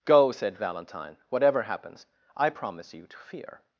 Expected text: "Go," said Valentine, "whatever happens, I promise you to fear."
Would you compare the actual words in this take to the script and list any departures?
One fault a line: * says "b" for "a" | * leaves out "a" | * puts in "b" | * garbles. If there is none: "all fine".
all fine